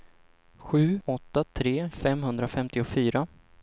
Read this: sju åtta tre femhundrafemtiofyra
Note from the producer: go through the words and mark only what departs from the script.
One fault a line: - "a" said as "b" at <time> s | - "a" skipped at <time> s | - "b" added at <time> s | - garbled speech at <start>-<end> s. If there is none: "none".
none